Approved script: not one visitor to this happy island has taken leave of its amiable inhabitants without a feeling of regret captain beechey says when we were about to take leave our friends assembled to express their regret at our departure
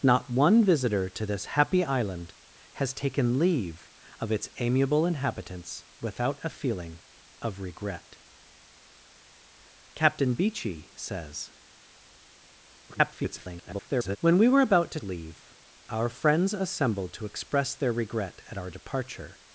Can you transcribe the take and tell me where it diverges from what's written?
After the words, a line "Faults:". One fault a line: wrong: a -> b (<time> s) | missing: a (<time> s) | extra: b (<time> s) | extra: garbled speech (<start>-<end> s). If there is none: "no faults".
not one visitor to this happy island has taken leave of its amiable inhabitants without a feeling of regret captain beechey says [garbled] when we were about to leave our friends assembled to express their regret at our departure
Faults:
extra: garbled speech (12.9-14.2 s)
missing: take (15.0 s)